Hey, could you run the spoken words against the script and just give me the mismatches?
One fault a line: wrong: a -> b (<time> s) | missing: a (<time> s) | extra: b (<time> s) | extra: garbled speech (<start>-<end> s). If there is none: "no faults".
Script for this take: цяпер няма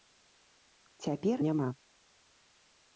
no faults